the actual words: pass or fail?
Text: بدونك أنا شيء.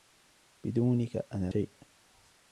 pass